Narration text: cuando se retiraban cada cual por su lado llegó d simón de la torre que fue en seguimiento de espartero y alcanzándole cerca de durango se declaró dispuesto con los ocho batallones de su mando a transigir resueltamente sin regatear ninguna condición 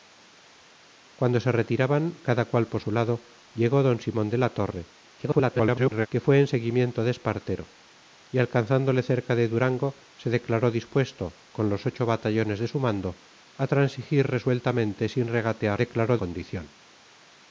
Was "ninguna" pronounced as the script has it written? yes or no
no